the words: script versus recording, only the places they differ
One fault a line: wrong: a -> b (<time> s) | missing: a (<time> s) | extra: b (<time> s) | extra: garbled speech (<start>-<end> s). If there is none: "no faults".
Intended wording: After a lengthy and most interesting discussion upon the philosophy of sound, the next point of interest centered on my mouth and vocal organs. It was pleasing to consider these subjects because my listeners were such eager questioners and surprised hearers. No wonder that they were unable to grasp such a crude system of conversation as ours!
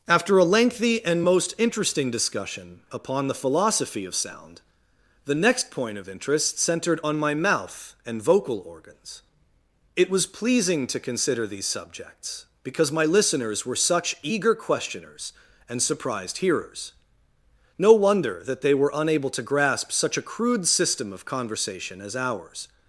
no faults